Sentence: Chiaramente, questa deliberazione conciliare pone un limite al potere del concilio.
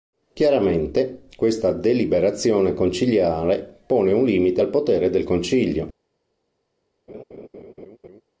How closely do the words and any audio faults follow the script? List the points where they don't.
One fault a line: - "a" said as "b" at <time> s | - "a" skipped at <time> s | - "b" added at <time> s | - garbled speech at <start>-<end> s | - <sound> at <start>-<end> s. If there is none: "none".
- laugh at 7.1-8.2 s